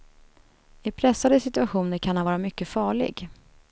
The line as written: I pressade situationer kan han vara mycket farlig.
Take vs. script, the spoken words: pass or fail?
pass